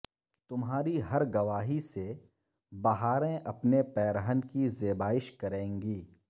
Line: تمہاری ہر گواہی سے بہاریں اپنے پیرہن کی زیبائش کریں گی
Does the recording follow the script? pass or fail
pass